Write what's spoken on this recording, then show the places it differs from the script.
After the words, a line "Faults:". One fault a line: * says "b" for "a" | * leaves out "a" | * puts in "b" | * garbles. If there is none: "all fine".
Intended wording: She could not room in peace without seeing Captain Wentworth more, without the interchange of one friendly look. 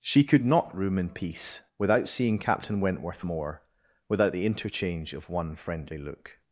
She could not room in peace without seeing Captain Wentworth more, without the interchange of one friendly look.
Faults:
all fine